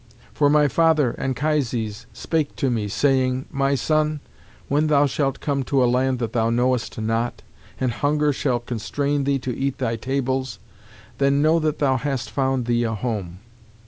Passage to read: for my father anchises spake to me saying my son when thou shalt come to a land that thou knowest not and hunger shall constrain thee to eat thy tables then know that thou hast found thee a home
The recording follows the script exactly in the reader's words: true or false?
true